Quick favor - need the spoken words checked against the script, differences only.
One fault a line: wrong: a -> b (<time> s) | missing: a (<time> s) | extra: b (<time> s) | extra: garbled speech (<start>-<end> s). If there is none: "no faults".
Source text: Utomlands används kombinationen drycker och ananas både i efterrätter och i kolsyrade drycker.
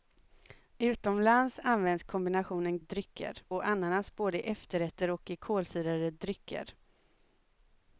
no faults